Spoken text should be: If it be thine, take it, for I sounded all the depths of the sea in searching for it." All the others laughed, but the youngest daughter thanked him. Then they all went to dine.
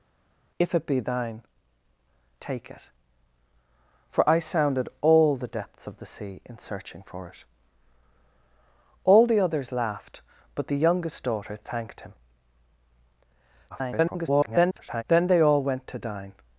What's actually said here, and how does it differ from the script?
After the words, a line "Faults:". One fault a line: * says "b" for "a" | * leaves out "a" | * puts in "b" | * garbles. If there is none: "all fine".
If it be thine, take it, for I sounded all the depths of the sea in searching for it." All the others laughed, but the youngest daughter thanked him. [garbled] Then they all went to dine.
Faults:
* garbles